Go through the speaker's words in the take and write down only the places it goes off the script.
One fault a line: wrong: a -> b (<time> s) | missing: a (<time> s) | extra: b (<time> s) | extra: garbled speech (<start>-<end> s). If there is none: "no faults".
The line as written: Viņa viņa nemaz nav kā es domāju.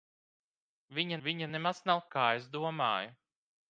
no faults